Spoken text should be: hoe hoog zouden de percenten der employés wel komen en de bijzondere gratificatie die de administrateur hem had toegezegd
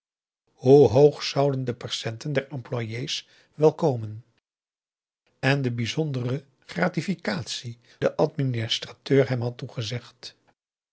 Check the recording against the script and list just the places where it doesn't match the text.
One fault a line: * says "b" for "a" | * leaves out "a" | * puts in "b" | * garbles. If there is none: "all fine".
* leaves out "die"